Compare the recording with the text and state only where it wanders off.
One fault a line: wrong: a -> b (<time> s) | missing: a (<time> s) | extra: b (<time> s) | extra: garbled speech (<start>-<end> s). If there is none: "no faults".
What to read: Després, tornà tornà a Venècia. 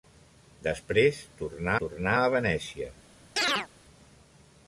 no faults